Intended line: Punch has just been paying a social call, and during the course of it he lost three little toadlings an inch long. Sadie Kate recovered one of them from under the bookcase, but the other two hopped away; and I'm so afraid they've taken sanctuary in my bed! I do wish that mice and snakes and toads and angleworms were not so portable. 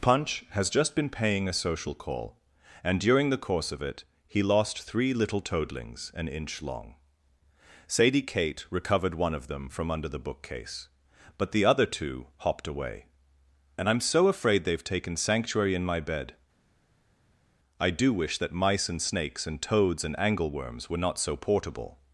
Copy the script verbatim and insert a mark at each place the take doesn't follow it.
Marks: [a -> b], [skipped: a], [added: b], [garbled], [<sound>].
Punch has just been paying a social call, and during the course of it he lost three little toadlings an inch long. Sadie Kate recovered one of them from under the bookcase, but the other two hopped away; and I'm so afraid they've taken sanctuary in my bed! I do wish that mice and snakes and toads and angleworms were not so portable.